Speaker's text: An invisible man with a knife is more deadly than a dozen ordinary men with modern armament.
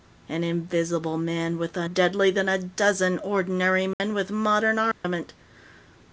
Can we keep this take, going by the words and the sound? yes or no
no